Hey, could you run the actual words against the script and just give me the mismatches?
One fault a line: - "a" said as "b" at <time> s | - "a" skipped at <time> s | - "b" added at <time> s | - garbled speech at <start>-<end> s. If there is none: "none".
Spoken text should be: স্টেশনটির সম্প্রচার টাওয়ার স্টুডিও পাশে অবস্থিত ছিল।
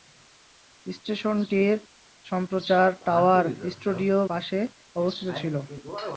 none